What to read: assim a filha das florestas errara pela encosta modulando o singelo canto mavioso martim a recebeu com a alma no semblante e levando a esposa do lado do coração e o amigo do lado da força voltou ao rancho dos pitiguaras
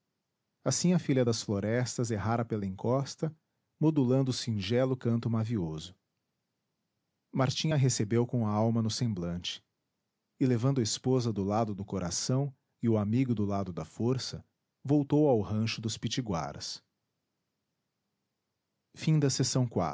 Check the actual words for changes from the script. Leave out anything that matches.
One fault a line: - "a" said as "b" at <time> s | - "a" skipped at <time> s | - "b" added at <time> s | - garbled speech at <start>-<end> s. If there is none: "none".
none